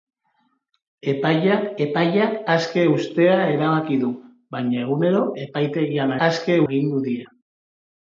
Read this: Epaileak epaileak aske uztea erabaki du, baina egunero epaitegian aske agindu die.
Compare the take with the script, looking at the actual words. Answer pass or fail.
pass